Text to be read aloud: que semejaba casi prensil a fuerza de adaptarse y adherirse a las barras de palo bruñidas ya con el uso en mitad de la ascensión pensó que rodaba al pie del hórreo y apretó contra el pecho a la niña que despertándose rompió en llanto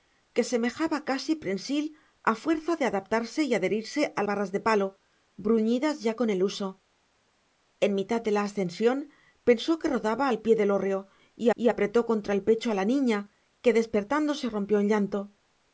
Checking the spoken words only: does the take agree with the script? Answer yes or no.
no